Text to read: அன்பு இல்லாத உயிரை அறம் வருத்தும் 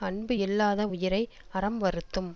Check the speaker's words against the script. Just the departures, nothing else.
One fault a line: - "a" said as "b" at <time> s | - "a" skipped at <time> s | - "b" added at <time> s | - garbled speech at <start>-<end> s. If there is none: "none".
none